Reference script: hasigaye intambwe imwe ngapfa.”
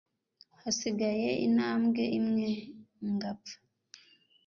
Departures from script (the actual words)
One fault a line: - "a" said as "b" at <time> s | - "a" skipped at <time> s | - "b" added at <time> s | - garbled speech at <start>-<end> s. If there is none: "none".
none